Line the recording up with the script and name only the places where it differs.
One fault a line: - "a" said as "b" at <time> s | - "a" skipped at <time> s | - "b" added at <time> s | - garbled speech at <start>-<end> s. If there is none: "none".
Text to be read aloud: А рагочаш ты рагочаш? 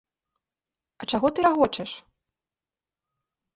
- "рагочаш" said as "чаго" at 1.1 s